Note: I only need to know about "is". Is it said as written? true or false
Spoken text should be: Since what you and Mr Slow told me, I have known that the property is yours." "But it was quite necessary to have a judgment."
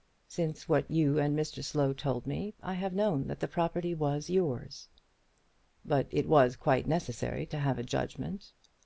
false